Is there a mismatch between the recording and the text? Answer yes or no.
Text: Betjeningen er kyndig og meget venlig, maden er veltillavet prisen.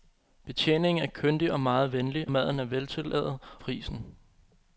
no